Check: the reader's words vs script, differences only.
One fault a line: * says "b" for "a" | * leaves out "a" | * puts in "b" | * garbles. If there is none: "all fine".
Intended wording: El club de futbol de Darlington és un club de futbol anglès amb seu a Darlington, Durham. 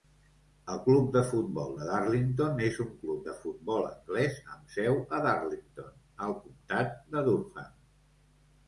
* puts in "al comtat de"